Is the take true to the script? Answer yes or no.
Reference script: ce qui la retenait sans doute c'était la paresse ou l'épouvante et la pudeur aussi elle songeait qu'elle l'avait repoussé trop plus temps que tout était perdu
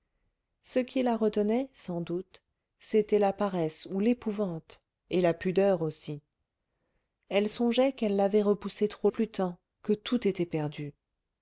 yes